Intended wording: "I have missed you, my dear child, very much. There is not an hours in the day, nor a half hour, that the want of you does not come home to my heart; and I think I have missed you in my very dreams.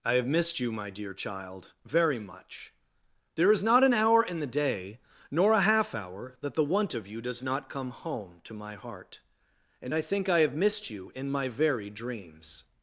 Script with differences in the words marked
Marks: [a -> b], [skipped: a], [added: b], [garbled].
"I have missed you, my dear child, very much. There is not an [hours -> hour] in the day, nor a half hour, that the want of you does not come home to my heart; and I think I have missed you in my very dreams.